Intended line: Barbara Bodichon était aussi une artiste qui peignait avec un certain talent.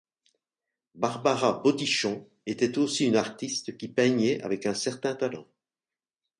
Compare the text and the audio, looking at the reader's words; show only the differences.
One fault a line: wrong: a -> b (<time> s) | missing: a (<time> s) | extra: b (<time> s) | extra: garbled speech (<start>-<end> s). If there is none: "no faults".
no faults